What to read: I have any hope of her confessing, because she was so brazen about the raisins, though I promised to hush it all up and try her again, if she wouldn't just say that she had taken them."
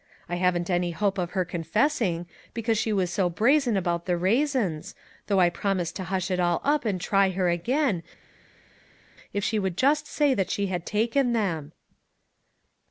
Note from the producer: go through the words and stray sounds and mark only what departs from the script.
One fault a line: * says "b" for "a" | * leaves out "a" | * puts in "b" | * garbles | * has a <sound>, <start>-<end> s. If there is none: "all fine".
* says "haven't" for "have"
* says "would" for "wouldn't"